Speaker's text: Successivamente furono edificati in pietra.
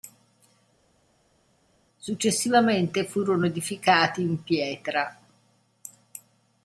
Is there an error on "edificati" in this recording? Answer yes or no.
no